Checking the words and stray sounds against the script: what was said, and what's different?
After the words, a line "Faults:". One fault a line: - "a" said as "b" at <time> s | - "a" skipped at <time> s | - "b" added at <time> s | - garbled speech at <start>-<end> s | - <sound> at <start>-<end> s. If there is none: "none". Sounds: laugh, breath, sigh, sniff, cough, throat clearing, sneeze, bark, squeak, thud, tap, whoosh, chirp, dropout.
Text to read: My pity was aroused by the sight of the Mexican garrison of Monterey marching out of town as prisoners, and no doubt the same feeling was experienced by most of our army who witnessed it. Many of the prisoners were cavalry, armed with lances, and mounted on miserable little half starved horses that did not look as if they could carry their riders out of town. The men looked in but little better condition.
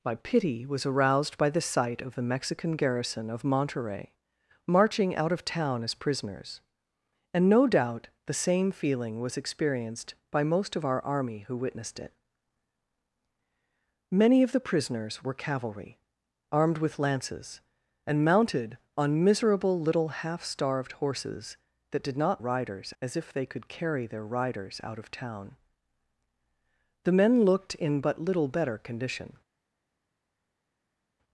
My pity was aroused by the sight of the Mexican garrison of Monterey marching out of town as prisoners, and no doubt the same feeling was experienced by most of our army who witnessed it. Many of the prisoners were cavalry, armed with lances, and mounted on miserable little half starved horses that did not riders as if they could carry their riders out of town. The men looked in but little better condition.
Faults:
- "look" said as "riders" at 22.4 s